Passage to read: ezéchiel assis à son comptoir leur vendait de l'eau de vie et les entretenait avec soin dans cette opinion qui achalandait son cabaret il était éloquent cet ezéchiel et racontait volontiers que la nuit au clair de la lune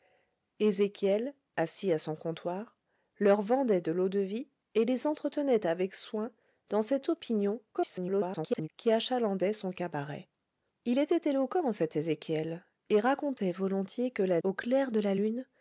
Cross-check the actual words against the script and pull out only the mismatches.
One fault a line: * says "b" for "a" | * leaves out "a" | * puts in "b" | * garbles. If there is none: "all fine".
* garbles
* leaves out "nuit"